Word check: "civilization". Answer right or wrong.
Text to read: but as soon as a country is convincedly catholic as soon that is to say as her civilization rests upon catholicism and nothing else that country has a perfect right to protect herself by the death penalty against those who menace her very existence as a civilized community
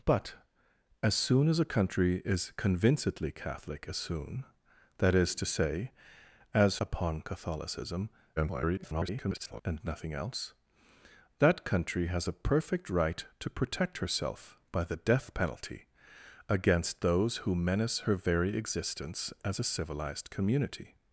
wrong